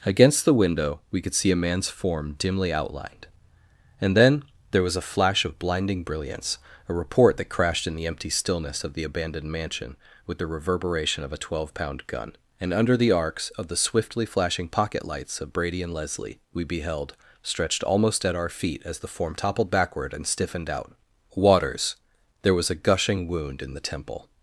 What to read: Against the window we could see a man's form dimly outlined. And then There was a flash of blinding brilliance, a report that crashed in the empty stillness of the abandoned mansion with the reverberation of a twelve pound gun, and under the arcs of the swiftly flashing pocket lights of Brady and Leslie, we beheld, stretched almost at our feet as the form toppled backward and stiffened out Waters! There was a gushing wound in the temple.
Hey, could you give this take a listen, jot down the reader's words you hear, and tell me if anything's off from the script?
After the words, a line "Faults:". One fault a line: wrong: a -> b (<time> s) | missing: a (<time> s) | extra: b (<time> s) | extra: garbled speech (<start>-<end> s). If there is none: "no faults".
Against the window we could see a man's form dimly outlined. And then There was a flash of blinding brilliance, a report that crashed in the empty stillness of the abandoned mansion with the reverberation of a twelve pound gun, and under the arcs of the swiftly flashing pocket lights of Brady and Leslie, we beheld, stretched almost at our feet as the form toppled backward and stiffened out Waters! There was a gushing wound in the temple.
Faults:
no faults